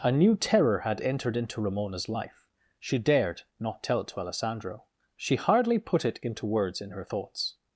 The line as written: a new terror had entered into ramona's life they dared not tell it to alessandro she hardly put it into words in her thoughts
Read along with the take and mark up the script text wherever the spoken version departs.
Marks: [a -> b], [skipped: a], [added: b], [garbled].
a new terror had entered into ramona's life [they -> she] dared not tell it to alessandro she hardly put it into words in her thoughts